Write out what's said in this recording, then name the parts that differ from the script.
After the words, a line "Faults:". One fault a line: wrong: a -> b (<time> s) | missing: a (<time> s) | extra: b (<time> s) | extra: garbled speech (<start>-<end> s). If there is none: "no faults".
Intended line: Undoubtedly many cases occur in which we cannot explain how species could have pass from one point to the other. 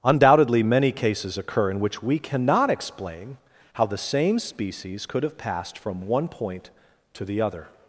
Undoubtedly many cases occur in which we cannot explain how the same species could have passed from one point to the other.
Faults:
extra: the same (3.9 s)
wrong: pass -> passed (5.4 s)